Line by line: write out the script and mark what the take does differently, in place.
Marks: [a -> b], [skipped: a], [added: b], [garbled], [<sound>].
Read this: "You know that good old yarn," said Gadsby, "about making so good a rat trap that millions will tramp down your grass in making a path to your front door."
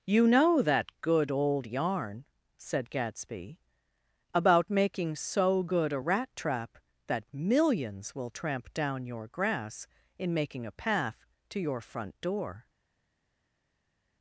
"You know that good old yarn," said Gadsby, "about making so good a rat trap that millions will tramp down your grass in making a path to your front door."